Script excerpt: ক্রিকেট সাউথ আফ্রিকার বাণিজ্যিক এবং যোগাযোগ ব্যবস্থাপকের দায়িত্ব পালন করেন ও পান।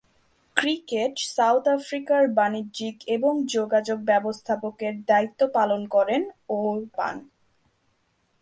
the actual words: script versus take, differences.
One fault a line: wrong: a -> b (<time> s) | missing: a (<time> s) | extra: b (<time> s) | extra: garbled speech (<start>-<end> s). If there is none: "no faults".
no faults